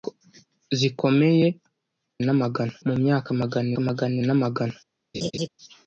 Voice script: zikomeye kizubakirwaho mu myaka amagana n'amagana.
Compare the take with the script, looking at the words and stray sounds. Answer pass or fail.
fail